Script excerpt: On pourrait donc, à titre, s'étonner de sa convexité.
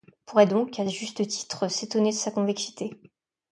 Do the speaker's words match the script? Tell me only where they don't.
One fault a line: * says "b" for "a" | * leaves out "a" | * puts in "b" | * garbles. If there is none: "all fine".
* puts in "juste"